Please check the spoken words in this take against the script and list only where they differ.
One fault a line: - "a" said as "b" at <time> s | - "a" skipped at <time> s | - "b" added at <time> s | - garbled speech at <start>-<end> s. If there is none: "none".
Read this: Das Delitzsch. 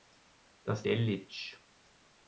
none